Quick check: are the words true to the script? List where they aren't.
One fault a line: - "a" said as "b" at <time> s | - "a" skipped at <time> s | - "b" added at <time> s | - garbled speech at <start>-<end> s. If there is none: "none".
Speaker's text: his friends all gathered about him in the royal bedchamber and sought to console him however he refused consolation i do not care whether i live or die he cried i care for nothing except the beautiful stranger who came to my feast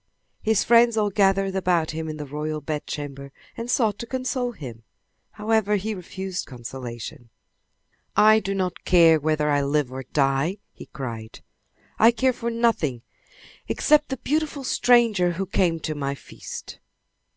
none